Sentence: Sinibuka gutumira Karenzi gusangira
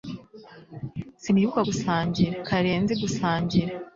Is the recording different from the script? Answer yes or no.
yes